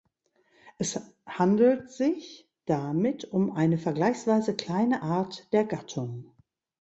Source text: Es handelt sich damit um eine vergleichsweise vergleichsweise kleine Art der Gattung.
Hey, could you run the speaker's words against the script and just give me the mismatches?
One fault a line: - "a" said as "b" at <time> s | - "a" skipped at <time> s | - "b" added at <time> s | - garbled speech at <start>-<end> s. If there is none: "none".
- "vergleichsweise" skipped at 4.5 s